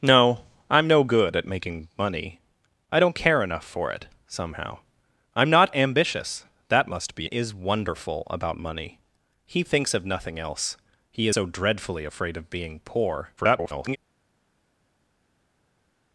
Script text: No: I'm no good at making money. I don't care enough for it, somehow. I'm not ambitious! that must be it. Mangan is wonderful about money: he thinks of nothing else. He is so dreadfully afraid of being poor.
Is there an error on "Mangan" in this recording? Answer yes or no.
yes